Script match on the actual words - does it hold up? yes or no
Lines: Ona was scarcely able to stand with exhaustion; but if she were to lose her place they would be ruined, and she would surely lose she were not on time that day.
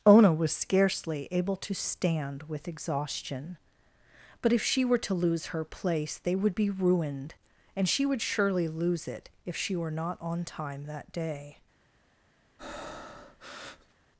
no